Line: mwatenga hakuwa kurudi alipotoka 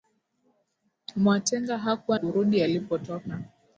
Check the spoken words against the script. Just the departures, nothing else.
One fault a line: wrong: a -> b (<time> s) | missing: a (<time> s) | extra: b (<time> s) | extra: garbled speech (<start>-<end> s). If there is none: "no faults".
no faults